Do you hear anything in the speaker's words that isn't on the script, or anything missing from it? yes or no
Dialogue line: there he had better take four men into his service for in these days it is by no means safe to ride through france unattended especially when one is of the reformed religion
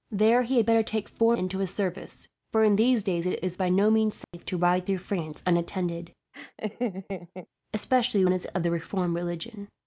yes